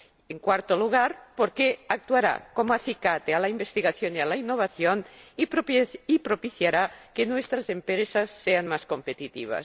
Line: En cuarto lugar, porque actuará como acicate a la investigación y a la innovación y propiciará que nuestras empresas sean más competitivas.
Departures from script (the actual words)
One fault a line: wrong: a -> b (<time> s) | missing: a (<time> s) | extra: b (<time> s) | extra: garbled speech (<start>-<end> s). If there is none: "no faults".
no faults